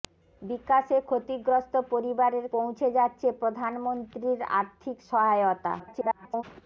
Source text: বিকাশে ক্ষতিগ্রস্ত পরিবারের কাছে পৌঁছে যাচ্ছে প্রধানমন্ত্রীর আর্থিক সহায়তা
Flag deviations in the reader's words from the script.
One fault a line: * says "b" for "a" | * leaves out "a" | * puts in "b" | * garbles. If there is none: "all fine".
* leaves out "কাছে"
* garbles